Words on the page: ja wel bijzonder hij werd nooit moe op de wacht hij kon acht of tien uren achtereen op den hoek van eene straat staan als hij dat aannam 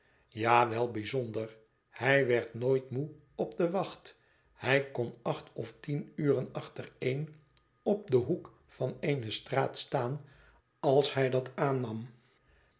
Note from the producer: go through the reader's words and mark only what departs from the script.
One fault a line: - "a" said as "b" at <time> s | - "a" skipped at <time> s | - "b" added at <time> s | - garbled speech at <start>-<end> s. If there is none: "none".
none